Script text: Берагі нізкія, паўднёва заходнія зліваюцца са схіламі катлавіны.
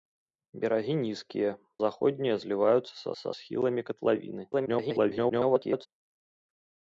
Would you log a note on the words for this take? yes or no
yes